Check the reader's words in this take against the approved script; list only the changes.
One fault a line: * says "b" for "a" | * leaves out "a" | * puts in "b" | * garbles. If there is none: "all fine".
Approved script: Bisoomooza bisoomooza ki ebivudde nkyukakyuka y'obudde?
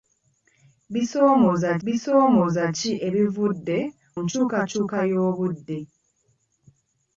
all fine